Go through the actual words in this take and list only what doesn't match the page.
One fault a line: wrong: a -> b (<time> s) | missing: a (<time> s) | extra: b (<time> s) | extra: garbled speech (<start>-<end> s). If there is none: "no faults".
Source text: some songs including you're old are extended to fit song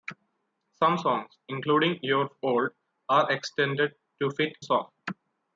no faults